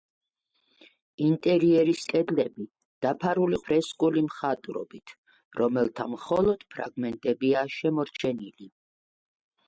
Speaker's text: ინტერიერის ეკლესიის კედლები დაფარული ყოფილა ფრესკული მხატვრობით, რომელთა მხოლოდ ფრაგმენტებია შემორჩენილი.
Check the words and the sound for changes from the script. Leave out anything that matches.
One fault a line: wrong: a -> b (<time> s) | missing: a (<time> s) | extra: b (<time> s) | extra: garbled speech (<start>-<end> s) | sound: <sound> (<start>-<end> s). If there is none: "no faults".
missing: ეკლესიის (2.0 s)
missing: ყოფილა (3.6 s)